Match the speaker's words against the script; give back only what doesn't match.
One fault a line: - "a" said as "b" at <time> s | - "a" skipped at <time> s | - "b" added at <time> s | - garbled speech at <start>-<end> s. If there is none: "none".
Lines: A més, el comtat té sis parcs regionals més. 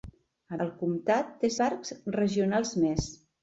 - "més" skipped at 0.6 s
- "sis" skipped at 1.5 s